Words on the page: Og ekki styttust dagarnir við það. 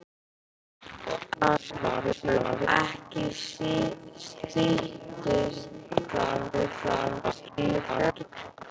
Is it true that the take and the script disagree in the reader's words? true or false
true